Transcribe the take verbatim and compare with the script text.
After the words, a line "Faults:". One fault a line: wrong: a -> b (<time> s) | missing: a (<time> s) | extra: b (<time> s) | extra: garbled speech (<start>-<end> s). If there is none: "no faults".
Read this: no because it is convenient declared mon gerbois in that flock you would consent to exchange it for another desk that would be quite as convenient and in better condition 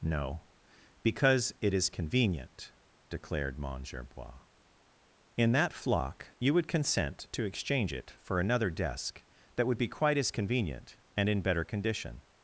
no because it is convenient declared mon gerbois in that flock you would consent to exchange it for another desk that would be quite as convenient and in better condition
Faults:
no faults